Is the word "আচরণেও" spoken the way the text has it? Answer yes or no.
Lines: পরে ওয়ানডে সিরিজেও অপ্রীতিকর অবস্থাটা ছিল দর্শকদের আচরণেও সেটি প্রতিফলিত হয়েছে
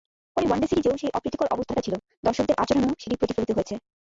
yes